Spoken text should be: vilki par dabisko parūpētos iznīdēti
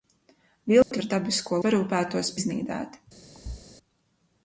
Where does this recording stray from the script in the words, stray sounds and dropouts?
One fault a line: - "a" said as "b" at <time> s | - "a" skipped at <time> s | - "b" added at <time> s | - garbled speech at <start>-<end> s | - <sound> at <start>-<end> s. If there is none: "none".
- dropout at 0.8-0.9 s
- thud at 3.3-3.7 s